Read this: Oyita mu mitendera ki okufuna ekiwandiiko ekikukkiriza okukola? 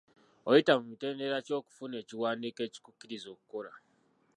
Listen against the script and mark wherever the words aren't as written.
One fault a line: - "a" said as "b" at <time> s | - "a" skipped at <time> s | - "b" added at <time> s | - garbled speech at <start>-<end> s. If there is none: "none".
none